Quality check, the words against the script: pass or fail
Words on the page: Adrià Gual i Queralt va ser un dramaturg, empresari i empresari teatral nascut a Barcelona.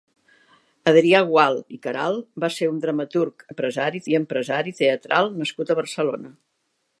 pass